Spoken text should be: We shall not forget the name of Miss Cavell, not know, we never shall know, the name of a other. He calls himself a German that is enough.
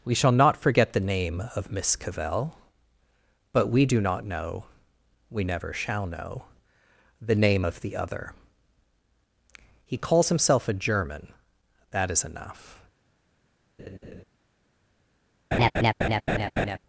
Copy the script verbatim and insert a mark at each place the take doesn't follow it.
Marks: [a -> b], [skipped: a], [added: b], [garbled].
We shall not forget the name of Miss Cavell, [added: but we do] not know, we never shall know, the name of [a -> the] other. He calls himself a German that is enough.